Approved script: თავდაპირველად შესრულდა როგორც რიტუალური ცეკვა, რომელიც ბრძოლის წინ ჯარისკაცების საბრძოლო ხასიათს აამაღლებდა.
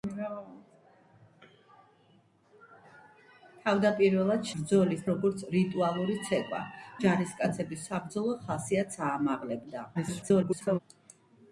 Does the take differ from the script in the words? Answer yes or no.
yes